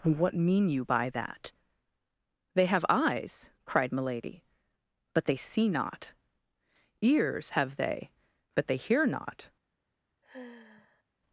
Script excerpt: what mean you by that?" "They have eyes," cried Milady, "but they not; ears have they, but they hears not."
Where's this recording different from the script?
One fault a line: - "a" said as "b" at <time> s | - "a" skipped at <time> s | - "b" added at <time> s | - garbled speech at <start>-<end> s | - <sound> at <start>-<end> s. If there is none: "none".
- "see" added at 5.3 s
- "hears" said as "hear" at 8.8 s
- sigh at 10.2-11.0 s